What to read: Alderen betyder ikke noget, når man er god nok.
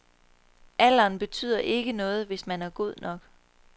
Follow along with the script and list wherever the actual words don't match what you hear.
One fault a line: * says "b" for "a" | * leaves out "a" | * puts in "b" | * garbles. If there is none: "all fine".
* says "hvis" for "når"